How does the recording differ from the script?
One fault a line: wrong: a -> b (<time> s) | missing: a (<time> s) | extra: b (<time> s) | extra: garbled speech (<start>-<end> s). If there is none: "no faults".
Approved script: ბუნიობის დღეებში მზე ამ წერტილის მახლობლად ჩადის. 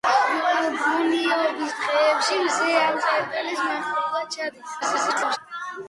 extra: garbled speech (4.8-5.4 s)